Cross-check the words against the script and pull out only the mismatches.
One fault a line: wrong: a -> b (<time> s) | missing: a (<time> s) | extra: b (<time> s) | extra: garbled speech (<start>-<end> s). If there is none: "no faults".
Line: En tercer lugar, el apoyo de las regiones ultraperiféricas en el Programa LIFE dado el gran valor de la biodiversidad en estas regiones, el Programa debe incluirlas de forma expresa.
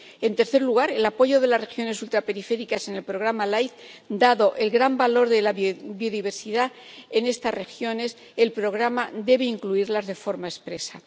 no faults